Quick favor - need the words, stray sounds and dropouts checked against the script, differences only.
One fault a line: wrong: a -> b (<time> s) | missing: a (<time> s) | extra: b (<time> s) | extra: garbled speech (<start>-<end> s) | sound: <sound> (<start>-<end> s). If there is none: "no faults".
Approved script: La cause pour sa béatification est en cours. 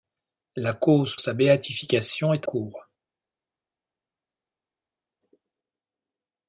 missing: pour (1.1 s)
missing: en (2.5 s)